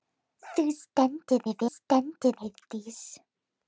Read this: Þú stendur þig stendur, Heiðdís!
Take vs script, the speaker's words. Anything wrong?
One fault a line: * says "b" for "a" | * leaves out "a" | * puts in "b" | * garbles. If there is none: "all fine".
all fine